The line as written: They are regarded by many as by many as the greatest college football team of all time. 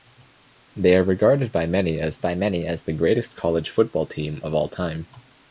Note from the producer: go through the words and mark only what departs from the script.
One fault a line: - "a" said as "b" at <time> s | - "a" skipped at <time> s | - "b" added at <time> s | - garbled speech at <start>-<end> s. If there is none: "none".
none